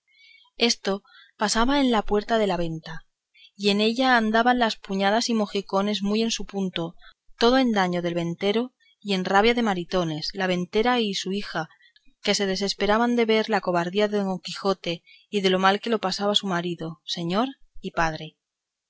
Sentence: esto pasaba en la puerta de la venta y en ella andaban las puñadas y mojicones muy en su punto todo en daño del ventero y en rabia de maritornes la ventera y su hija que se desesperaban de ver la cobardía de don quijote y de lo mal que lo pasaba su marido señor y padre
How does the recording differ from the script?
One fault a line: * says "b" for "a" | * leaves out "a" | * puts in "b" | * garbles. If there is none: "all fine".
all fine